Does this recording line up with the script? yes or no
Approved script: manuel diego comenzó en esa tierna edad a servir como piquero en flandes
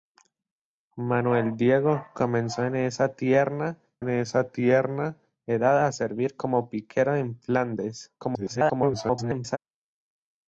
no